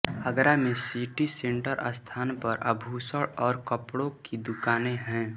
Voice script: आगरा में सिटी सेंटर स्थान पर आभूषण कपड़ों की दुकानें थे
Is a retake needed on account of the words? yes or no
yes